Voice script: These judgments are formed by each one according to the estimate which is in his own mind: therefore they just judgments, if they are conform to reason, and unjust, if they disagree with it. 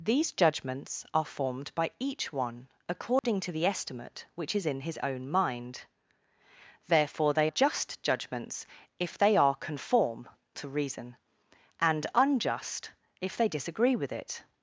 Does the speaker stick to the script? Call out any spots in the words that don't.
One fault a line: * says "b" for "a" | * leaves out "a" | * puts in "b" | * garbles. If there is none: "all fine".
all fine